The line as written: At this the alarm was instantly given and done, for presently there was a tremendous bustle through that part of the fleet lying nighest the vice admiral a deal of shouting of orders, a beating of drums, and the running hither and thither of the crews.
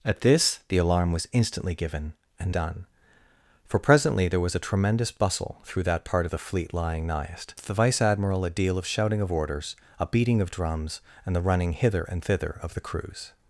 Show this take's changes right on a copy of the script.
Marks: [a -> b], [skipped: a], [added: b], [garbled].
At this the alarm was instantly given and done, for presently there was a tremendous bustle through that part of the fleet lying nighest the vice admiral a deal of shouting of orders, a beating of drums, and the running hither and thither of the crews.